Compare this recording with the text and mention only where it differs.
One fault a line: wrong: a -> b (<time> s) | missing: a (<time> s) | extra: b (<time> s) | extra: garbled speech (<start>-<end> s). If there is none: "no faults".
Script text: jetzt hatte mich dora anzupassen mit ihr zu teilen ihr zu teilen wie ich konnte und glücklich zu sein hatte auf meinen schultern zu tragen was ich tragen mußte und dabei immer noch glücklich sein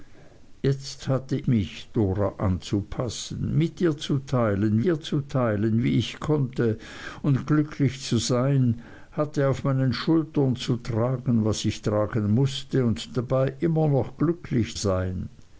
no faults